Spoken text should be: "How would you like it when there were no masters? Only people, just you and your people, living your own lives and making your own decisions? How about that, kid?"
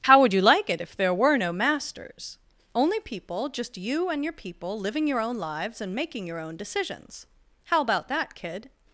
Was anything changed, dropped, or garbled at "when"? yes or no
yes